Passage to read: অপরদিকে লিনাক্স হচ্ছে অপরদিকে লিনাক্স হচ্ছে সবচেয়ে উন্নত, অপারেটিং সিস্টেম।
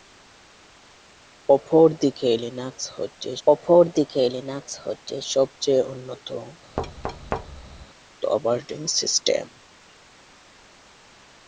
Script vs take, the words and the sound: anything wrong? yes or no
yes